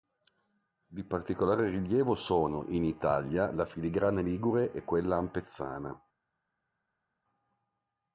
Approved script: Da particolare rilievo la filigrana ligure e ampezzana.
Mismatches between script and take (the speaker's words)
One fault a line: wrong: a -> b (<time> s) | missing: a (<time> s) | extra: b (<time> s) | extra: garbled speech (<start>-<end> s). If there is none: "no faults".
wrong: Da -> Di (0.9 s)
extra: sono in Italia (2.1 s)
extra: quella (4.8 s)